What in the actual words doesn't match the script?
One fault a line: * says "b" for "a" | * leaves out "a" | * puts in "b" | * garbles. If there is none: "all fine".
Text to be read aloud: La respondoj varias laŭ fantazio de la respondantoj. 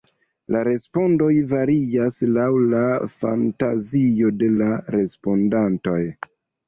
* puts in "la"